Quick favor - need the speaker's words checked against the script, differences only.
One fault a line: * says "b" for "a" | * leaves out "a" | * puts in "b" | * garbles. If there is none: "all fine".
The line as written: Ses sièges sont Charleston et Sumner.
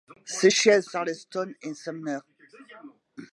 * leaves out "sont"